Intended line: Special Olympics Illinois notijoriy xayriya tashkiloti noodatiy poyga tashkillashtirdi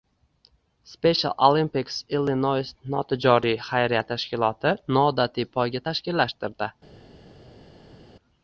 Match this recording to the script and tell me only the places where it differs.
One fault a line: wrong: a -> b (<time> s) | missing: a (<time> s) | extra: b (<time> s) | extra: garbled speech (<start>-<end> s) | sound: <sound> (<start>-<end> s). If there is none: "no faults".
no faults